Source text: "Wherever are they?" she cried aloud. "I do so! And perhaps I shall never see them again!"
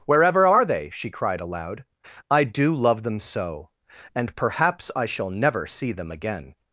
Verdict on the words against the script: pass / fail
fail